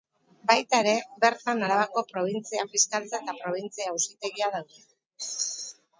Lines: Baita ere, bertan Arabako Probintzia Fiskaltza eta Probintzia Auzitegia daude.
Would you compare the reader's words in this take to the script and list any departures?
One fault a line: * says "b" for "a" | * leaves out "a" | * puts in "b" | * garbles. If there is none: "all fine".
all fine